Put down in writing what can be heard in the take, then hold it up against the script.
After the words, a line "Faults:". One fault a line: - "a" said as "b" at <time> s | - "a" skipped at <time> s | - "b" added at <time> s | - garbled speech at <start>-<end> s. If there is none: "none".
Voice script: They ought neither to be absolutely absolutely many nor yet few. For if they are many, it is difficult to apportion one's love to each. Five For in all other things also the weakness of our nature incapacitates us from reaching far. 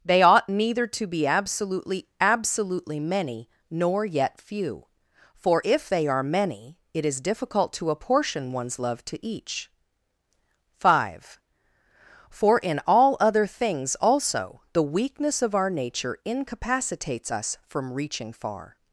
They ought neither to be absolutely absolutely many nor yet few. For if they are many, it is difficult to apportion one's love to each. Five For in all other things also the weakness of our nature incapacitates us from reaching far.
Faults:
none